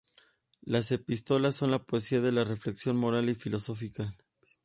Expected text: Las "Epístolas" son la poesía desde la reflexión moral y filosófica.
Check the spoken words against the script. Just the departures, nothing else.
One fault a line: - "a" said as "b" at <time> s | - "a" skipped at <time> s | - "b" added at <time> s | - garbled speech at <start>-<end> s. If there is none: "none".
- "desde" said as "de" at 2.2 s